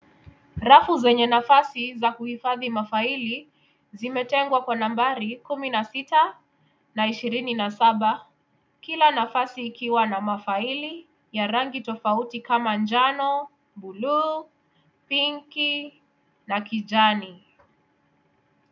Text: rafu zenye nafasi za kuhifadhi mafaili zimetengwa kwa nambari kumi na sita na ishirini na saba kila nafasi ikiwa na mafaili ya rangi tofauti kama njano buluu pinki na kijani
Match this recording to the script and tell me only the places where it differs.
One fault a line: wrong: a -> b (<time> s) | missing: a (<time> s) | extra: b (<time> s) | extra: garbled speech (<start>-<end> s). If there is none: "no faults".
no faults